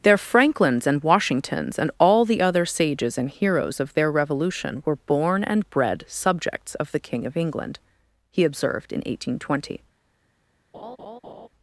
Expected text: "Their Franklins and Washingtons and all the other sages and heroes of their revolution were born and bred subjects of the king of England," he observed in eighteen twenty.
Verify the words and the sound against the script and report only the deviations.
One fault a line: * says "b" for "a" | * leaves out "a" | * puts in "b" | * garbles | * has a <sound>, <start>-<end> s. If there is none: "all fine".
* has a laugh, 10.7-11.5 s